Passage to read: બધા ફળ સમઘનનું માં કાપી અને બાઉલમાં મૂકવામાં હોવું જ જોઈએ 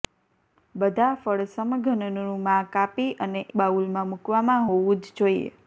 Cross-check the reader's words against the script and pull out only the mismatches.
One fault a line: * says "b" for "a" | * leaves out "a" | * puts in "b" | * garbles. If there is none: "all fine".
all fine